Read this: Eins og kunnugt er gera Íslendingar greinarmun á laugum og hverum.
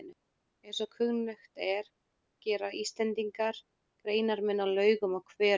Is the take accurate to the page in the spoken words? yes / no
yes